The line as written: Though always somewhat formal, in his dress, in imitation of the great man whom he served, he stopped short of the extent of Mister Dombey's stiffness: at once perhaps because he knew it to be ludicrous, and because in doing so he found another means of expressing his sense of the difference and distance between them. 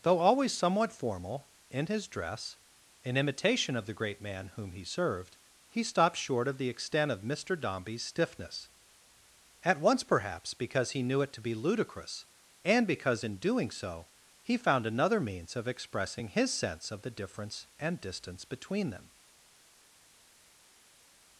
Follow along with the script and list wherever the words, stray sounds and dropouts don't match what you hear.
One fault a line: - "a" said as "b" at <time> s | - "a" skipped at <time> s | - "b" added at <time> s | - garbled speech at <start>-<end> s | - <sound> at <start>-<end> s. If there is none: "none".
none